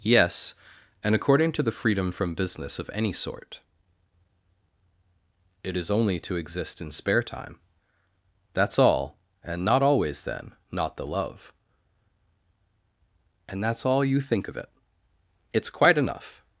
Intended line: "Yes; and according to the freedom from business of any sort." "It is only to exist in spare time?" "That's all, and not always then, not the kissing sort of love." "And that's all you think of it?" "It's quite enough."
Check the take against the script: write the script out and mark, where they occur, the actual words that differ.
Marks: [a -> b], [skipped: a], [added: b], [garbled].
"Yes; and according to the freedom from business of any sort." "It is only to exist in spare time?" "That's all, and not always then, not the [skipped: kissing sort of] love." "And that's all you think of it?" "It's quite enough."